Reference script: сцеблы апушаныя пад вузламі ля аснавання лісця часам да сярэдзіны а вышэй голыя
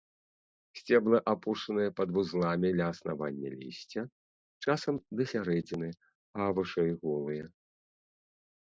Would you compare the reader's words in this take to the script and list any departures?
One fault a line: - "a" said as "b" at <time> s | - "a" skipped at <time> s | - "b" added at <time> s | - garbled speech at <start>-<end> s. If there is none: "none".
none